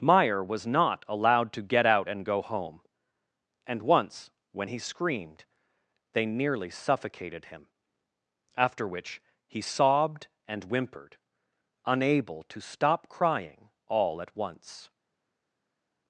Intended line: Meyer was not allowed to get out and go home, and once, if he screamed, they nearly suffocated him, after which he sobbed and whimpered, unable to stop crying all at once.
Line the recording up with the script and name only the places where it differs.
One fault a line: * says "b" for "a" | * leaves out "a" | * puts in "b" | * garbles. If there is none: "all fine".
* says "when" for "if"